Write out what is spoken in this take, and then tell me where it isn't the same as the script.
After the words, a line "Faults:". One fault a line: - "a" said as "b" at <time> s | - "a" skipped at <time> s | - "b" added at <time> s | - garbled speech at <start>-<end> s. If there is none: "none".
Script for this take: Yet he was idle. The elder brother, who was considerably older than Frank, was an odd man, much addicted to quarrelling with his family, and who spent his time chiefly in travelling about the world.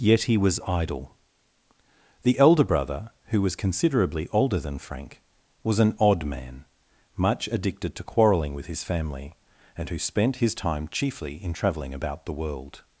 Yet he was idle. The elder brother, who was considerably older than Frank, was an odd man, much addicted to quarrelling with his family, and who spent his time chiefly in travelling about the world.
Faults:
none